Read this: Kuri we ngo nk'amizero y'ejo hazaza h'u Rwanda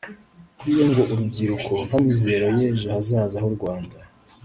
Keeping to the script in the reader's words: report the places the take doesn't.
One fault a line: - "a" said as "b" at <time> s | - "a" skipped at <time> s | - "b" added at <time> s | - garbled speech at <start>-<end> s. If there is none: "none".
- "urubyiruko" added at 1.1 s